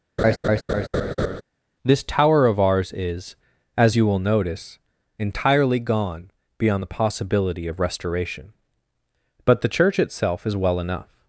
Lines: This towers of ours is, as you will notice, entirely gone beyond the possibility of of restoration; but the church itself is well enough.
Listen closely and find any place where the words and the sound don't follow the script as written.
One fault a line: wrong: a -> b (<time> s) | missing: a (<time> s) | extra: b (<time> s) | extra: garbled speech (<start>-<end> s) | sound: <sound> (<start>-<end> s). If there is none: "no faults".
sound: laugh (0.2-1.4 s)
wrong: towers -> tower (2.0 s)
missing: of (7.8 s)